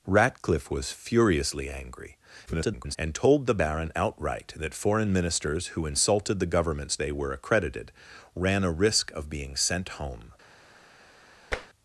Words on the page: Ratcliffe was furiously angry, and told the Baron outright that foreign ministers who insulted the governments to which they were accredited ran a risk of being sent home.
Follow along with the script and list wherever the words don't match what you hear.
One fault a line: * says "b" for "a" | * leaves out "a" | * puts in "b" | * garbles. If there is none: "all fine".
* garbles
* leaves out "to which"